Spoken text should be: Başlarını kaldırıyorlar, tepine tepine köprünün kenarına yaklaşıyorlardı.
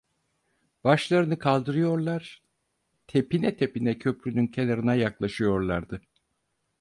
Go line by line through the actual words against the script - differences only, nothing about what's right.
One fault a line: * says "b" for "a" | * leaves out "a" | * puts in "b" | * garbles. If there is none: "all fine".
all fine